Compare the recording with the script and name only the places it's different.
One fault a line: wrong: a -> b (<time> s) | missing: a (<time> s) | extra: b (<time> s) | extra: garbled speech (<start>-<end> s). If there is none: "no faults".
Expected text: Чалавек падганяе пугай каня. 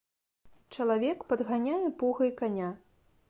no faults